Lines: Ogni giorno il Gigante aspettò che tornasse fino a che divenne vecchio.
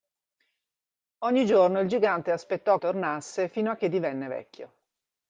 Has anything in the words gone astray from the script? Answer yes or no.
yes